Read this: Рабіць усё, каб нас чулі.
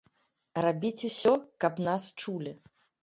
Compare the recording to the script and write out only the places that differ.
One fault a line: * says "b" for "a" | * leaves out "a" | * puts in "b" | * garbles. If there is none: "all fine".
all fine